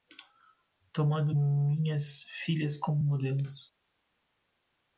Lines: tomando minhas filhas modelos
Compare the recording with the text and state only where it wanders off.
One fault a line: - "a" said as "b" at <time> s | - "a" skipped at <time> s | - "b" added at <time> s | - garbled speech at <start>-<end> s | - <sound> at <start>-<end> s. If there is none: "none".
- "como" added at 2.8 s